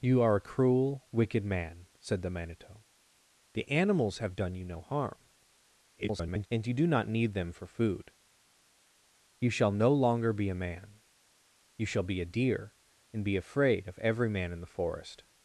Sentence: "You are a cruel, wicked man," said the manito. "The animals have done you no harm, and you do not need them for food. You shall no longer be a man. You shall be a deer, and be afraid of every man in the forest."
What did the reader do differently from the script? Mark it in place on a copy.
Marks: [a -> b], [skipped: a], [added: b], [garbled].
"You are a cruel, wicked man," said the manito. "The animals have done you no harm, [garbled] and you do not need them for food. You shall no longer be a man. You shall be a deer, and be afraid of every man in the forest."